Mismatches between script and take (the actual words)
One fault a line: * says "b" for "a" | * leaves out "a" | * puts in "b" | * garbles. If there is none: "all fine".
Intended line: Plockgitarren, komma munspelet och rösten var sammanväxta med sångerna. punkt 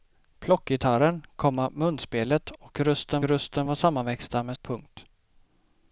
* puts in "rösten"
* leaves out "sångerna"